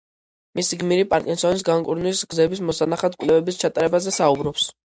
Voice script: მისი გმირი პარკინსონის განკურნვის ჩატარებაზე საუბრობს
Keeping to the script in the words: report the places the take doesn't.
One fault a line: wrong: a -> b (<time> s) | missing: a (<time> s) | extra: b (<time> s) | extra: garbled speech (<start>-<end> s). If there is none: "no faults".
extra: გზების მოსანახად კვლევების (2.3 s)